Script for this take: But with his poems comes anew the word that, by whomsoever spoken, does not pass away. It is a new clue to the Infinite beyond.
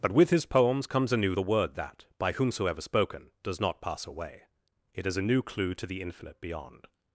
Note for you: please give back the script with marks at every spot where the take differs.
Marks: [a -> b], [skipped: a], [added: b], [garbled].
But with his poems comes anew the word that, by whomsoever spoken, does not pass away. It is a new clue to the Infinite beyond.